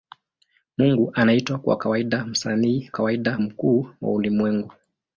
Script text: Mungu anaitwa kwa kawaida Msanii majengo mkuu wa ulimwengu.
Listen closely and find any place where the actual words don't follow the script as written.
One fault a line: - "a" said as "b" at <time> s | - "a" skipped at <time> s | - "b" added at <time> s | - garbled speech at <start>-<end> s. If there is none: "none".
- "majengo" said as "kawaida" at 2.9 s